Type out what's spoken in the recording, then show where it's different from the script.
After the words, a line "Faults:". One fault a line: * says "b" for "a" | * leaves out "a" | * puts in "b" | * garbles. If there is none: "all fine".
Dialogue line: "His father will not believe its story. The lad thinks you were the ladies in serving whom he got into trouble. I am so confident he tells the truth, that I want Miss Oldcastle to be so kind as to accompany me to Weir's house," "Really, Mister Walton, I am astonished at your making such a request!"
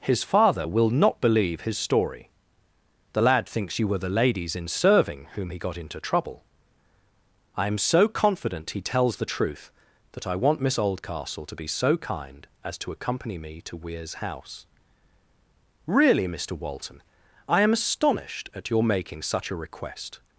"His father will not believe his story. The lad thinks you were the ladies in serving whom he got into trouble. I am so confident he tells the truth, that I want Miss Oldcastle to be so kind as to accompany me to Weir's house," "Really, Mister Walton, I am astonished at your making such a request!"
Faults:
* says "his" for "its"